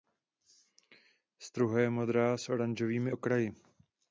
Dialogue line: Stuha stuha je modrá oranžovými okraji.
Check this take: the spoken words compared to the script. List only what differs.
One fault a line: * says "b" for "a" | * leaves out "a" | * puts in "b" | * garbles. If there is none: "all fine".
* leaves out "stuha"
* puts in "s"